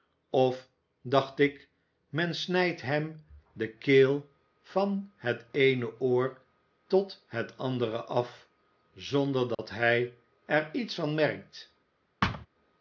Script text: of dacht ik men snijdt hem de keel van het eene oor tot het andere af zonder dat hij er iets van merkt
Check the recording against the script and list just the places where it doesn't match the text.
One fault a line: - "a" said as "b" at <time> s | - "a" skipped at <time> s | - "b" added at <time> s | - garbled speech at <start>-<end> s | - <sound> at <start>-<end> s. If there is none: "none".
- dropout at 9.5-9.6 s
- thud at 12.2-12.5 s